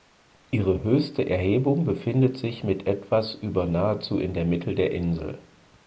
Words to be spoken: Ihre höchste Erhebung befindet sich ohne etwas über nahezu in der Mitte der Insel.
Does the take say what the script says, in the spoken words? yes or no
no